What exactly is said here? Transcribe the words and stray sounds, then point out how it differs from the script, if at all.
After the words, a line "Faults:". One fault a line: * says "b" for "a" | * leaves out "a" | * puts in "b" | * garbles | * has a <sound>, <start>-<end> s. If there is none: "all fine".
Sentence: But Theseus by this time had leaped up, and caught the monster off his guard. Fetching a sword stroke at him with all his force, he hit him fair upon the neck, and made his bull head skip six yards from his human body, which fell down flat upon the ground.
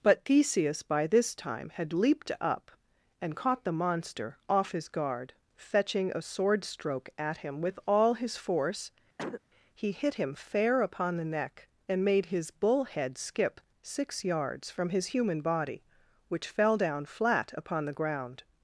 But Theseus by this time had leaped up, and caught the monster off his guard. Fetching a sword stroke at him with all his force, he hit him fair upon the neck, and made his bull head skip six yards from his human body, which fell down flat upon the ground.
Faults:
* has a cough, 9.2-9.4 s